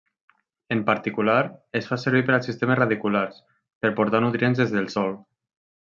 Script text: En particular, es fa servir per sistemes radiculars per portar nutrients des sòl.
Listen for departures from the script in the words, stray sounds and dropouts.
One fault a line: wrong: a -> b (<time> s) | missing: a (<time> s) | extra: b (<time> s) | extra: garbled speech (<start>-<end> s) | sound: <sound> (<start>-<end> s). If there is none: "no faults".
extra: als (2.4 s)
extra: del (4.8 s)